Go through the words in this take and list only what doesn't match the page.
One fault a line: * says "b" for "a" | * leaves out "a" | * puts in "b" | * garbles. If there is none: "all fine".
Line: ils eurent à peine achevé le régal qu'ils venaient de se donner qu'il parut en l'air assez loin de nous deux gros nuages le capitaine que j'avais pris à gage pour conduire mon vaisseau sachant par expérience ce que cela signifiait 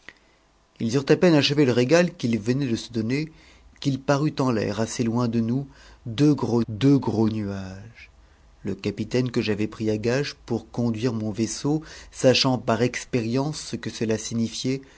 * puts in "deux gros"